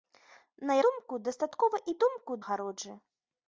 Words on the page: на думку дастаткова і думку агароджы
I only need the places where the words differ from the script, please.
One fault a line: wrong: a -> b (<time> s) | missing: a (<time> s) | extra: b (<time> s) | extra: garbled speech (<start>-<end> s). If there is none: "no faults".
no faults